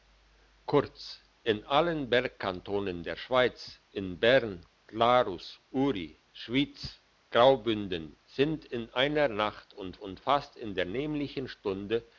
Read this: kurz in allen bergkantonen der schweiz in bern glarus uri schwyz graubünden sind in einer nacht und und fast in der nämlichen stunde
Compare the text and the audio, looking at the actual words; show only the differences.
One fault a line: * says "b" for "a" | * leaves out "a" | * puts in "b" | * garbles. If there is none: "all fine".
all fine